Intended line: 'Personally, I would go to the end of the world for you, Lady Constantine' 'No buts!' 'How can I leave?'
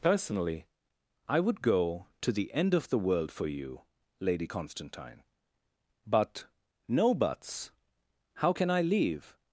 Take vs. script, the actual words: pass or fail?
fail